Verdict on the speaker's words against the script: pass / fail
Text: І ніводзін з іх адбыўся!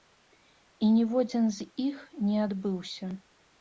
fail